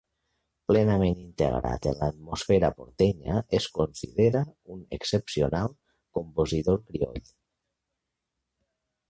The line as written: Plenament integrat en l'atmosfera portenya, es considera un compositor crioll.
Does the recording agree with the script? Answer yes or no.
no